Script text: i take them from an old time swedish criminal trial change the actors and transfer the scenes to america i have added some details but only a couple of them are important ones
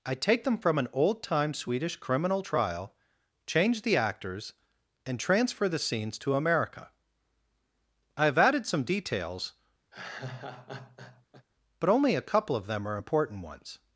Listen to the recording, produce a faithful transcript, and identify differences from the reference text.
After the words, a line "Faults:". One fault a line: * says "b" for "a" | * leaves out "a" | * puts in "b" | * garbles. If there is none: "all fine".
i take them from an old time swedish criminal trial change the actors and transfer the scenes to america i have added some details but only a couple of them are important ones
Faults:
all fine